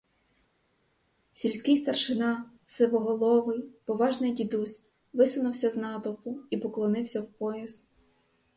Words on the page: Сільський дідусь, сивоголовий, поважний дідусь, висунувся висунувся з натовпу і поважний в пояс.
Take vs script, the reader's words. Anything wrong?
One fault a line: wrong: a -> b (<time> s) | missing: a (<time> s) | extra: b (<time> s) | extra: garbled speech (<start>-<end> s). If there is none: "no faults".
wrong: дідусь -> старшина (1.8 s)
missing: висунувся (5.7 s)
wrong: поважний -> поклонився (6.6 s)